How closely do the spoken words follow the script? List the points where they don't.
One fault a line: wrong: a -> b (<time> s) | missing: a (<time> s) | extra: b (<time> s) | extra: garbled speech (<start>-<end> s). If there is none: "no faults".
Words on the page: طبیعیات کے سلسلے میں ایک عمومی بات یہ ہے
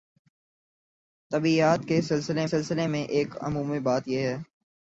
extra: سلسلے (2.4 s)